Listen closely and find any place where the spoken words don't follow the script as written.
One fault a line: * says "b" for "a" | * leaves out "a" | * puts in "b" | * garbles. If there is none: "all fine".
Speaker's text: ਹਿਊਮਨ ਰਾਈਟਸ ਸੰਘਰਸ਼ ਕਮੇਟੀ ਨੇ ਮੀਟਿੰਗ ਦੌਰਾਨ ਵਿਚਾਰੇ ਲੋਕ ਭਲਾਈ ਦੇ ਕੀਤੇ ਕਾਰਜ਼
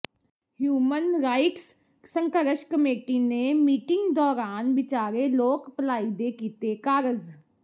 all fine